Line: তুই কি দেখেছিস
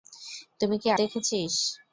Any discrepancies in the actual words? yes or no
no